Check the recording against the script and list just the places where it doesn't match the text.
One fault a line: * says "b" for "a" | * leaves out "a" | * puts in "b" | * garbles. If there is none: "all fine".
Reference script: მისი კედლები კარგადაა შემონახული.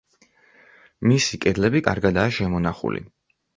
all fine